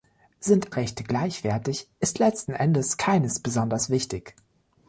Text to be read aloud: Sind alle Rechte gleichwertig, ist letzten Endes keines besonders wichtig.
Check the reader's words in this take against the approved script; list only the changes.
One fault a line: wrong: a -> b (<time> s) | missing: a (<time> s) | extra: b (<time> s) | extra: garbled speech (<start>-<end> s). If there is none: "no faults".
missing: alle (0.7 s)